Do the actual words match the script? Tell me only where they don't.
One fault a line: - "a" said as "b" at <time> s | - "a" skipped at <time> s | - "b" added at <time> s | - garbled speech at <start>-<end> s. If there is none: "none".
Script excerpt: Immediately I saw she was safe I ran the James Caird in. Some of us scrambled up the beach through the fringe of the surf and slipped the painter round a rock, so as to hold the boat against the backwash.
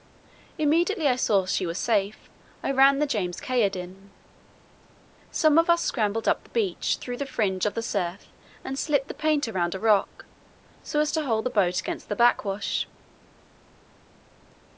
none